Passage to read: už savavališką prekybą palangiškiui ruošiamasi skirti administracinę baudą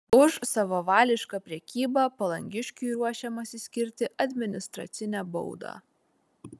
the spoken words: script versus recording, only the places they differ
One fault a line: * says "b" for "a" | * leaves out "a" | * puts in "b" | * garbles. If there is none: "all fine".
all fine